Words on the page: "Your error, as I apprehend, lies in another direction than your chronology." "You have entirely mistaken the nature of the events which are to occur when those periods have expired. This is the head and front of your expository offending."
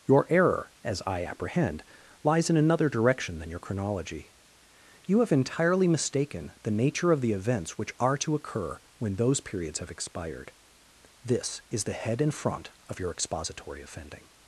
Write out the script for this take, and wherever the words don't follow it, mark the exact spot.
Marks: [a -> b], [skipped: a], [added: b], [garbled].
"Your error, as I apprehend, lies in another direction than your chronology." "You have entirely mistaken the nature of the events which are to occur when those periods have expired. This is the head and front of your expository offending."